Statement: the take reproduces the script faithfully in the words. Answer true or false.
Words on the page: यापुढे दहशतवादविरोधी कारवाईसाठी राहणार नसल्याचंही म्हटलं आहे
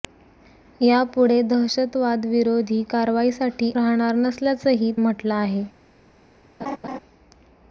true